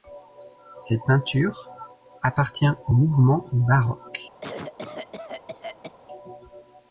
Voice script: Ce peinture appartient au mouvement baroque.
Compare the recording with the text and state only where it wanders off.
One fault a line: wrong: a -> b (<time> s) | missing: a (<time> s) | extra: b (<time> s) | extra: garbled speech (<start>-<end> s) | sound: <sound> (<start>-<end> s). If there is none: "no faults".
wrong: Ce -> Cette (0.7 s)
sound: cough (4.4-5.9 s)